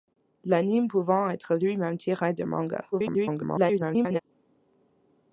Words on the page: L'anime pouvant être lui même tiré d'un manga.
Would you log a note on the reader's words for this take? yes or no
yes